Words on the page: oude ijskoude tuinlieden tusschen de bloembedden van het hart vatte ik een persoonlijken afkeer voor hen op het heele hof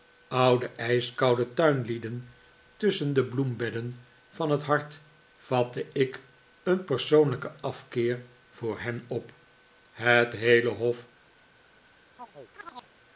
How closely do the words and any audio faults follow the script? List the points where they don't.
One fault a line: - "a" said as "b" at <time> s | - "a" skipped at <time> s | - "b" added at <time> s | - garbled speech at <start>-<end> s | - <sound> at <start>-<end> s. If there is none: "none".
- chirp at 12.2-12.9 s